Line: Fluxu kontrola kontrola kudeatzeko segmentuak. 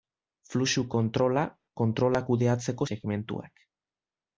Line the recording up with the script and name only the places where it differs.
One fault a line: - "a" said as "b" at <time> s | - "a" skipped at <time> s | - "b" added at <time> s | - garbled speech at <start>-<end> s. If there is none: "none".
none